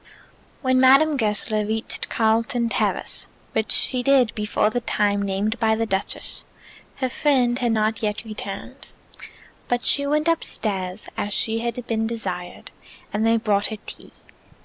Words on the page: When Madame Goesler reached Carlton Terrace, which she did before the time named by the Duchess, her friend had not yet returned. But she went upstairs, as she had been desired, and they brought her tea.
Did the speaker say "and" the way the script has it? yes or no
yes